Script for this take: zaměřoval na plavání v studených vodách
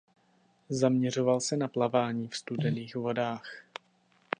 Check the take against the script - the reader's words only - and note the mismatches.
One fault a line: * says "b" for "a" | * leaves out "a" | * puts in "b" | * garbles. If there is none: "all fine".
* puts in "se"